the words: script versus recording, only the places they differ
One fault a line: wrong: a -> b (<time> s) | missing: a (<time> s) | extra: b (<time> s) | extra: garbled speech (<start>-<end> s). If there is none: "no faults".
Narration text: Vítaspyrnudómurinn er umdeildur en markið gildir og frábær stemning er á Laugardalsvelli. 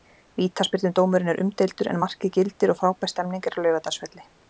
no faults